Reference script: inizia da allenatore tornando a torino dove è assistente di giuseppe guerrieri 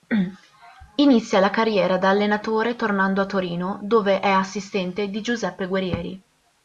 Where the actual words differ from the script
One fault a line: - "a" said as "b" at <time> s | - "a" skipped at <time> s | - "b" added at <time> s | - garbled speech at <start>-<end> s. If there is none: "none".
- "la carriera" added at 1.4 s